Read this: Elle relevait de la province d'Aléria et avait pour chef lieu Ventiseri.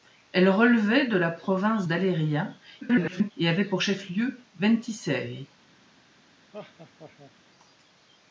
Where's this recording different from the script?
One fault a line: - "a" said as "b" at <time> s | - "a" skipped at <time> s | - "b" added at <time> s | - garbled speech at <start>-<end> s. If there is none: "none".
- garbled speech at 2.8-3.3 s